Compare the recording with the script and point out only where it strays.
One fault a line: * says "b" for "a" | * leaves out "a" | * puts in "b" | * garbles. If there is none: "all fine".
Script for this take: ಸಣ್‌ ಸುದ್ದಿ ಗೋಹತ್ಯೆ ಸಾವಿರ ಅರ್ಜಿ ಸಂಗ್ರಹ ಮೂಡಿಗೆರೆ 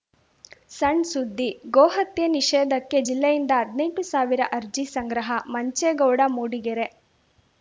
* puts in "ನಿಷೇಧಕ್ಕೆ ಜಿಲ್ಲೆಯಿಂದ ಹದ್ನೆಂಟು"
* puts in "ಮಂಚೇಗೌಡ"